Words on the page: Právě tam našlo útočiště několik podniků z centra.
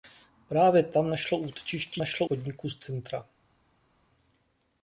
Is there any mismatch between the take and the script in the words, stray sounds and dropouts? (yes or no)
yes